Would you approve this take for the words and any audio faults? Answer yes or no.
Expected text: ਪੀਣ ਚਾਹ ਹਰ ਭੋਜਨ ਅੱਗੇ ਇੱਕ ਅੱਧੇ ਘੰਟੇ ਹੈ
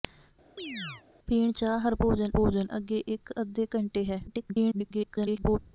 no